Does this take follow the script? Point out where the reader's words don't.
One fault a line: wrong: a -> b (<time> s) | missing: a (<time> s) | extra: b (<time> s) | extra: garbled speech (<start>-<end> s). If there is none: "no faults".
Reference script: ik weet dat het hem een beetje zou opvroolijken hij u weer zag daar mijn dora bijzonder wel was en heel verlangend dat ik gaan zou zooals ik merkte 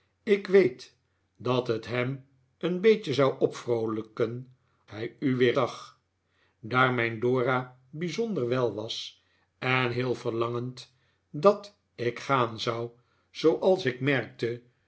no faults